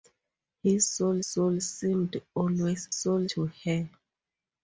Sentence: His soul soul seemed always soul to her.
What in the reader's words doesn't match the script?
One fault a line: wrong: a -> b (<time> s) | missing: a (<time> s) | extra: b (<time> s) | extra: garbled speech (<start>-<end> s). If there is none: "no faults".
no faults